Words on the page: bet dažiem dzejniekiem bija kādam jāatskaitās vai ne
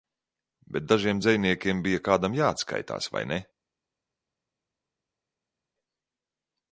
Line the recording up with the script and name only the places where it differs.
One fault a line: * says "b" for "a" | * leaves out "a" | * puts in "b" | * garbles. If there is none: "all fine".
all fine